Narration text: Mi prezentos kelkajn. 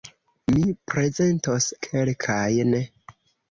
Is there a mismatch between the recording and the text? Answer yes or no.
no